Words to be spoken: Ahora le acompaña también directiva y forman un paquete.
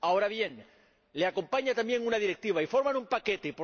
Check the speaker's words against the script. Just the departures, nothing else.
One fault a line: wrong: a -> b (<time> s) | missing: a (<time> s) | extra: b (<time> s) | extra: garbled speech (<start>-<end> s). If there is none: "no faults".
extra: bien (0.3 s)
extra: una (2.0 s)